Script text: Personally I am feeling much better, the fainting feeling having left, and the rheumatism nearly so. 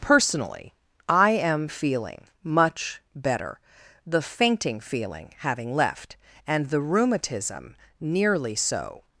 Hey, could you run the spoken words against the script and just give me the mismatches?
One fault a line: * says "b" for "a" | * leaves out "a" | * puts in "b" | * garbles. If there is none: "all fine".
all fine